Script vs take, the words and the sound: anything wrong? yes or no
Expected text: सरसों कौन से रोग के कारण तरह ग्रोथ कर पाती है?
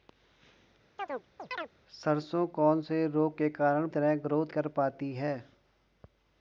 yes